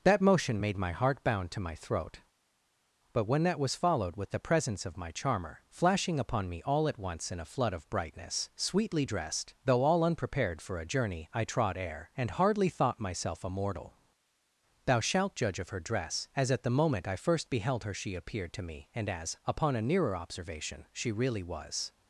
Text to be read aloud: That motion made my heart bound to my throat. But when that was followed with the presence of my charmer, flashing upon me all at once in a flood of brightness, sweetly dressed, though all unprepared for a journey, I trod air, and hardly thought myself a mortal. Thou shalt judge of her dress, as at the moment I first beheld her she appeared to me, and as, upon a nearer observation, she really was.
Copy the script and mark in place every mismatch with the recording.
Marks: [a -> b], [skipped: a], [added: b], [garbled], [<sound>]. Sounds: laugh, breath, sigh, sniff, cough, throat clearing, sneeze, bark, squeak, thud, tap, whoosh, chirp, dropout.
That motion made my heart bound to my throat. But when that was followed with the presence of my charmer, flashing upon me all at once in a flood of brightness, sweetly dressed, though all unprepared for a journey, I trod air, and hardly thought myself a mortal. Thou shalt judge of her dress, as at the moment I first beheld her she appeared to me, and as, upon a nearer observation, she really was.